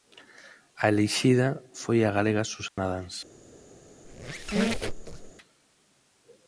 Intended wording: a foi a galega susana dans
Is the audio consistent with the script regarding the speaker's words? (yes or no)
no